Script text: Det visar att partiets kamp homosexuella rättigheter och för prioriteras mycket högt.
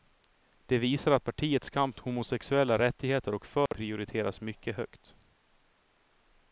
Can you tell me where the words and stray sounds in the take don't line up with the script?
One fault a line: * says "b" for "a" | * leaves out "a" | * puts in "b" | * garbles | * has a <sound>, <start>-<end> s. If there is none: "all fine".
* has a dropout, 3.7-3.7 s